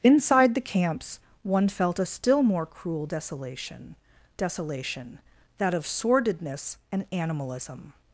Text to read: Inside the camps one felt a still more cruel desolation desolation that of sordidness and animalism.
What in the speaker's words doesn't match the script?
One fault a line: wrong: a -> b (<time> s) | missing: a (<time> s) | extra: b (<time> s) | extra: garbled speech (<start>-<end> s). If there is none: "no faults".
no faults